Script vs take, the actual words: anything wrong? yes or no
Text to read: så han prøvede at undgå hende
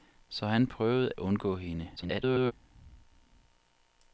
yes